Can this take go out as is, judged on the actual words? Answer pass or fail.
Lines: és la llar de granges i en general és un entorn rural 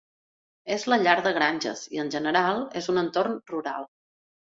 pass